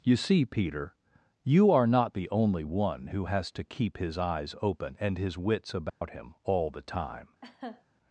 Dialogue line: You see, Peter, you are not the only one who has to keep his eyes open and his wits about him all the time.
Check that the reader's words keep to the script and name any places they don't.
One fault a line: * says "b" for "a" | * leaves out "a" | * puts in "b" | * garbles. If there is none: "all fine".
all fine